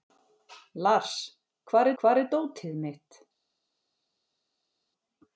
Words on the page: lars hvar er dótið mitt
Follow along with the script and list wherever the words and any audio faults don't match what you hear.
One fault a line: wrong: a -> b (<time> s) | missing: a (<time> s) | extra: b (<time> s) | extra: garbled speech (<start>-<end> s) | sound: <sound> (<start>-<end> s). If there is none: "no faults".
extra: hvar (2.0 s)